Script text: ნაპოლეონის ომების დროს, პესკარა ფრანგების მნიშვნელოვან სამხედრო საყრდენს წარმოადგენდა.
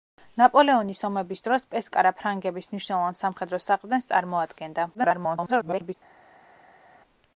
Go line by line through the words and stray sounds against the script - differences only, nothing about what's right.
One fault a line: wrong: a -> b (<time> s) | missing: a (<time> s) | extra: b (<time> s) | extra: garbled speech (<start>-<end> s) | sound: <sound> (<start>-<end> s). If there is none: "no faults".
extra: garbled speech (4.9-5.9 s)